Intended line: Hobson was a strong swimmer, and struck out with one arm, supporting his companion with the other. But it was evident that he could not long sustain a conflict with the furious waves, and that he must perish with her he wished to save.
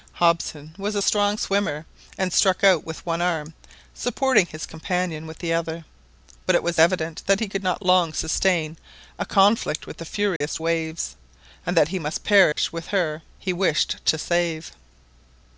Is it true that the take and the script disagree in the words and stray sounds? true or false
true